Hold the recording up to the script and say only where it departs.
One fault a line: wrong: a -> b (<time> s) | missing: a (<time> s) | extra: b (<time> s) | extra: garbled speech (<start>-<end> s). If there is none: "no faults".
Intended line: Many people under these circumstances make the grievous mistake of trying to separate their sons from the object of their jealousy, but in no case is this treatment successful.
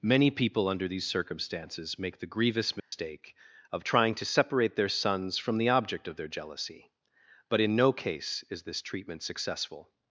no faults